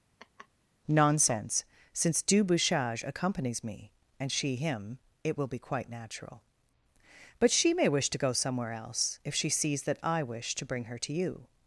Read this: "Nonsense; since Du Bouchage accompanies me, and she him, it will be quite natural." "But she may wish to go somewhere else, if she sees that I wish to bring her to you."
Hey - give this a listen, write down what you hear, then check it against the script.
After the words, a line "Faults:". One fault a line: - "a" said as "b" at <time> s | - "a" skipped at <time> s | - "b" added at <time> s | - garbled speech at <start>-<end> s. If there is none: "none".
"Nonsense; since Du Bouchage accompanies me, and she him, it will be quite natural." "But she may wish to go somewhere else, if she sees that I wish to bring her to you."
Faults:
none